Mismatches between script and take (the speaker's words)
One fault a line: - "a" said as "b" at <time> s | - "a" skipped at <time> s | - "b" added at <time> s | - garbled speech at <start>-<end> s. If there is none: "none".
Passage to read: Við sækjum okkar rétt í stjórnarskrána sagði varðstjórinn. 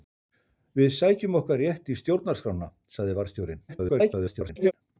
- garbled speech at 3.7-4.7 s